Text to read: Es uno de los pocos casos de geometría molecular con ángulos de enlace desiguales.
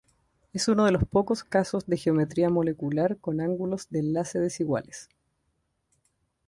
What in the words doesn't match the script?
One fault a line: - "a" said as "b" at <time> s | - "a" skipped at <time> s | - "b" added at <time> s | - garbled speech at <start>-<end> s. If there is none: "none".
none